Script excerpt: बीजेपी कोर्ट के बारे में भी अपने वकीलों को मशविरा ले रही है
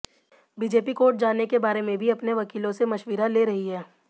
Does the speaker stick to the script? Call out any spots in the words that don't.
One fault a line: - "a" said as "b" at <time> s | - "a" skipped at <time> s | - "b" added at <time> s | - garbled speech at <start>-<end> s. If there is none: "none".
- "जाने" added at 1.2 s
- "को" said as "से" at 2.7 s